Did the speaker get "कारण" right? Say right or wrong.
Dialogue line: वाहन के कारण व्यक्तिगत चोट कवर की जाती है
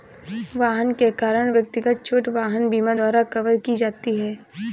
right